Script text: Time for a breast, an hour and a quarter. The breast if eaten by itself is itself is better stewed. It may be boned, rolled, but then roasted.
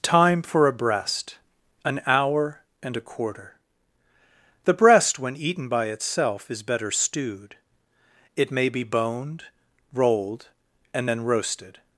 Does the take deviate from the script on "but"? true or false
true